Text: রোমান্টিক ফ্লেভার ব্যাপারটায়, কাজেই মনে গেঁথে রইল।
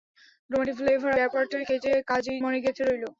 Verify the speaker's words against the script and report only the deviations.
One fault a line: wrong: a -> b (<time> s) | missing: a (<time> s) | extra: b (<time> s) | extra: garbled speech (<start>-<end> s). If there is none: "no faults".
no faults